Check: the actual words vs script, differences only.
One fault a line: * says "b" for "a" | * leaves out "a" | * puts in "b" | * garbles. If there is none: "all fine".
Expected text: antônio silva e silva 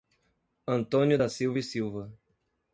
* puts in "da"